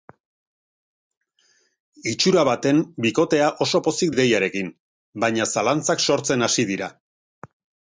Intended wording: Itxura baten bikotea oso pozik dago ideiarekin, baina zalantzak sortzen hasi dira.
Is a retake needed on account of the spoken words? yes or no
yes